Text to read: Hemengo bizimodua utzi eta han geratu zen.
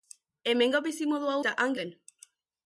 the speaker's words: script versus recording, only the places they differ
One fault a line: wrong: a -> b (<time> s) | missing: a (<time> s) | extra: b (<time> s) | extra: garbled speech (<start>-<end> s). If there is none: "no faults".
missing: utzi (1.4 s)
missing: geratu (1.8 s)